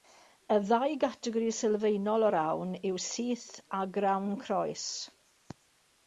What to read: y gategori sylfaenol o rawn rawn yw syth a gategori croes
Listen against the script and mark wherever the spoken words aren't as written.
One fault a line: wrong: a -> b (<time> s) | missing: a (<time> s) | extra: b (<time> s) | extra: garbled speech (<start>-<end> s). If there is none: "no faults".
extra: ddau (0.7 s)
missing: rawn (2.8 s)
wrong: gategori -> grawn (3.9 s)